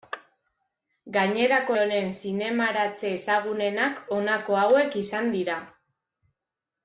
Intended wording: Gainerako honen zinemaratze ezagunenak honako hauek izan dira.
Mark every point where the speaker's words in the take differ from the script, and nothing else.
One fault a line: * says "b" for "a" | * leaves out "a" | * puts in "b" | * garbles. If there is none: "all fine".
all fine